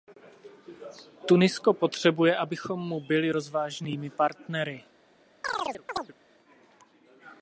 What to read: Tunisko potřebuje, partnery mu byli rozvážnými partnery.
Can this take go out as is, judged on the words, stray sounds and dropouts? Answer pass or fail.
fail